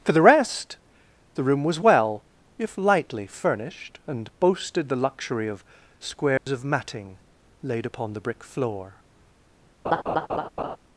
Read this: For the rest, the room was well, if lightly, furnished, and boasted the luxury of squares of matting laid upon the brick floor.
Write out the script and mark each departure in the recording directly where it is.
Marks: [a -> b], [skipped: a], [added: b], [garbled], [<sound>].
For the rest, the room was well, if lightly, furnished, and boasted the luxury of squares [dropout] of matting laid upon the brick floor. [laugh]